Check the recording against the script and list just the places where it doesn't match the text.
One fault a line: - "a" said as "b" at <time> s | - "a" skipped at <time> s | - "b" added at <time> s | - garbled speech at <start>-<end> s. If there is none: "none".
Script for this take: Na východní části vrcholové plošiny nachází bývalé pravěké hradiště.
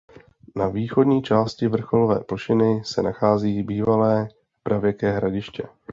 - "se" added at 2.9 s